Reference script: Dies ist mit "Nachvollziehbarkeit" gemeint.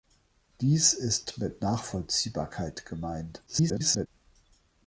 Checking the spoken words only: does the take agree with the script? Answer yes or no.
no